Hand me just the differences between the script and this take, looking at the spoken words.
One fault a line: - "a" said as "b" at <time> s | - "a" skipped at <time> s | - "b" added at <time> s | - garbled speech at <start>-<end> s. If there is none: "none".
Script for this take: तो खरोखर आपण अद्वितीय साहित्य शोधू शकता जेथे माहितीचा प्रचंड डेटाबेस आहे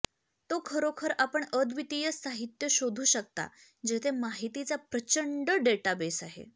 none